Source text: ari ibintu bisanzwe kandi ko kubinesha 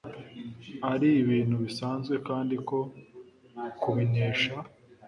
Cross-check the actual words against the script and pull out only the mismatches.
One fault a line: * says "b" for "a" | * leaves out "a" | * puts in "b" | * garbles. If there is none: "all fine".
all fine